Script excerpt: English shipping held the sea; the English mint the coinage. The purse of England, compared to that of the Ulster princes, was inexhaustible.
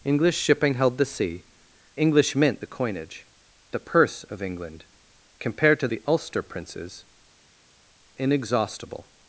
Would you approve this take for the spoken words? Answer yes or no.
no